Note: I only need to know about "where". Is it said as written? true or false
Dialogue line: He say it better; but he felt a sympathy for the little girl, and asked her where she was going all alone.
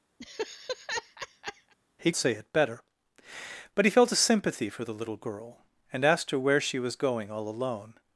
true